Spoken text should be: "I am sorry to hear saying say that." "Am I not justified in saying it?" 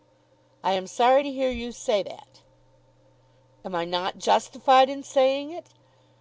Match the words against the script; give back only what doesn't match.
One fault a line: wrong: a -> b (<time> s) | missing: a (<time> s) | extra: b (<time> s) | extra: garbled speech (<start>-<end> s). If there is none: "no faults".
wrong: saying -> you (1.5 s)